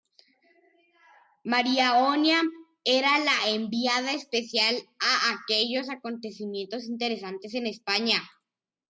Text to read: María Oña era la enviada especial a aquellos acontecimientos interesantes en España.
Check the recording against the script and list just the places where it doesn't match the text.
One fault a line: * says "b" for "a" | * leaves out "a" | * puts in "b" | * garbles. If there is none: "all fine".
all fine